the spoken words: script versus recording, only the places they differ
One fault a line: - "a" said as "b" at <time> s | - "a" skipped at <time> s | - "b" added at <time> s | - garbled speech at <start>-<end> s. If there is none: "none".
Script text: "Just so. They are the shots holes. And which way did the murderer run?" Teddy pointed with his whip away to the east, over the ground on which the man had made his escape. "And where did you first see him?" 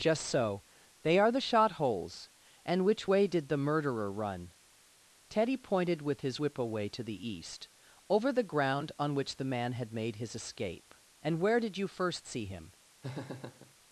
- "shots" said as "shot" at 1.5 s